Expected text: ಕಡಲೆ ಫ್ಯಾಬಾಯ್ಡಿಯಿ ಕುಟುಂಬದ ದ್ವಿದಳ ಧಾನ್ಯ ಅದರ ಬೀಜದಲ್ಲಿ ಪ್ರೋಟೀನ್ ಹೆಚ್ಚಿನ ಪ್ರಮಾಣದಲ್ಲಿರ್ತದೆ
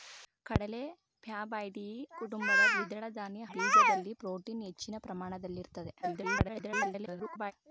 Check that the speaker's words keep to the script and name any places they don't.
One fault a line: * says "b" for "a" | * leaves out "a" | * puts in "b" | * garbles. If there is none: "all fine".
* leaves out "ಅದರ"
* garbles